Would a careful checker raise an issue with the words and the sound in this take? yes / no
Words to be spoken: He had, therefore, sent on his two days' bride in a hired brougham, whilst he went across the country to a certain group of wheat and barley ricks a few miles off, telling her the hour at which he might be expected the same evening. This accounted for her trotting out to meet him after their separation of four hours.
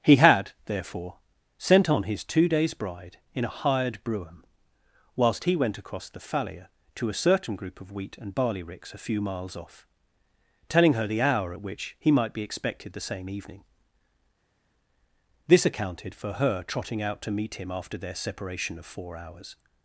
yes